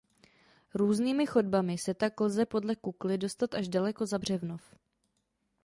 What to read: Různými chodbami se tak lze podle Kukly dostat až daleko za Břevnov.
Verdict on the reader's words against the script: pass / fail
pass